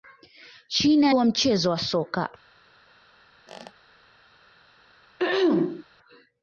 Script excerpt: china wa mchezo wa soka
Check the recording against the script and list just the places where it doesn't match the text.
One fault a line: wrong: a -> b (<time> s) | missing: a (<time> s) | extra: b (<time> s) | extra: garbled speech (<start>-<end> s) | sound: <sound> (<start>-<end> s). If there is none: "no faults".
sound: squeak (3.5-3.7 s)
sound: throat clearing (5.2-5.8 s)